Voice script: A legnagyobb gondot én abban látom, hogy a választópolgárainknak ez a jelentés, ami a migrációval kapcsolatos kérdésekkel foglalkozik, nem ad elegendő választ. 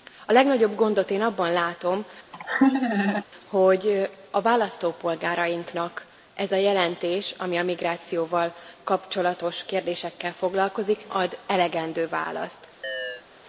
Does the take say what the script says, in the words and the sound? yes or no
no